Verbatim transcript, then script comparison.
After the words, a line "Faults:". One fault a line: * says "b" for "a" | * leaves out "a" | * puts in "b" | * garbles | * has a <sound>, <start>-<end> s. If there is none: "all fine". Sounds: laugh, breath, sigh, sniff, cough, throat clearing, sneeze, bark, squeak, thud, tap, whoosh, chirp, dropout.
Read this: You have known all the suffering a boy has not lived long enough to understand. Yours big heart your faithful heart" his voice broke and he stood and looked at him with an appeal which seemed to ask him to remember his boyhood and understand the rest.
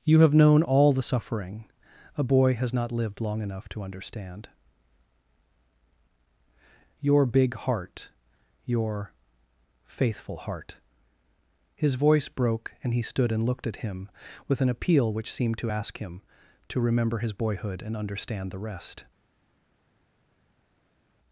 You have known all the suffering a boy has not lived long enough to understand. Your big heart your faithful heart" his voice broke and he stood and looked at him with an appeal which seemed to ask him to remember his boyhood and understand the rest.
Faults:
* says "Your" for "Yours"